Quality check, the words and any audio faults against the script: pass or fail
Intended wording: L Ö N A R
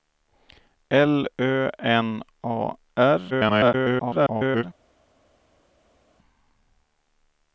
fail